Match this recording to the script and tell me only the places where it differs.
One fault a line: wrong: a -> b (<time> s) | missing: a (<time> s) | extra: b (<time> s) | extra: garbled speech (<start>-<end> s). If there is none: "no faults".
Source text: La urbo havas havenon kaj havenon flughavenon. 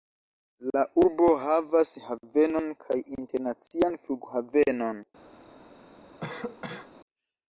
wrong: havenon -> internacian (3.2 s)